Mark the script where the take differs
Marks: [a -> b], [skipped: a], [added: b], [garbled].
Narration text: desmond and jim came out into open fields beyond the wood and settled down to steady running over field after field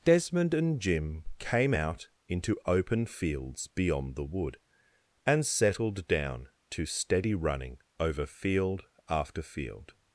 desmond and jim came out into open fields beyond the wood and settled down to steady running over field after field